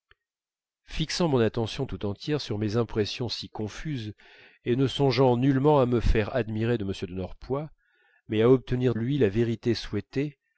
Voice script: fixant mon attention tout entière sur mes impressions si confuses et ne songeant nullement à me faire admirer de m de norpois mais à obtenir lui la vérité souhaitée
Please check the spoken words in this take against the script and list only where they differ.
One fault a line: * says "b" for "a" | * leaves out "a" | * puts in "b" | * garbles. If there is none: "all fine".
all fine